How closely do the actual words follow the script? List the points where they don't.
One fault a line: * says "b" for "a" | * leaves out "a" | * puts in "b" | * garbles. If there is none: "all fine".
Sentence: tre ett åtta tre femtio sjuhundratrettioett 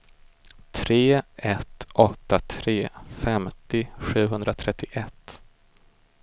all fine